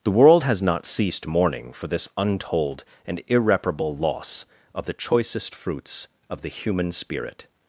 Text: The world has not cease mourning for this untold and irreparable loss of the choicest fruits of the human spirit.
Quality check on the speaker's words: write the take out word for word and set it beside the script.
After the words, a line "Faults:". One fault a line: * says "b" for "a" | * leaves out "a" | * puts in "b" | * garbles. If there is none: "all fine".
The world has not ceased mourning for this untold and irreparable loss of the choicest fruits of the human spirit.
Faults:
* says "ceased" for "cease"